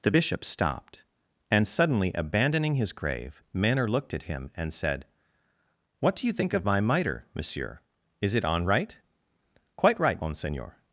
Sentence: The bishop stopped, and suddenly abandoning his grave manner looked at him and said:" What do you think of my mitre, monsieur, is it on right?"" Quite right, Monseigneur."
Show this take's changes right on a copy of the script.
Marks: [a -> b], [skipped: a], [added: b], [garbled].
The bishop stopped, and suddenly abandoning his grave manner looked at him and said:" What do you think of my mitre, monsieur, is it on right?"" Quite right, Monseigneur."